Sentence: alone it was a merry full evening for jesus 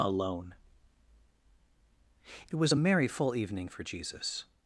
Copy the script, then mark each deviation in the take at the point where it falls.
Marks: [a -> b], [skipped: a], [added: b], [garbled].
alone it was a merry full evening for jesus